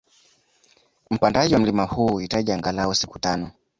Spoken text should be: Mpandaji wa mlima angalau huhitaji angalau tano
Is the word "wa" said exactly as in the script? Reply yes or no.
yes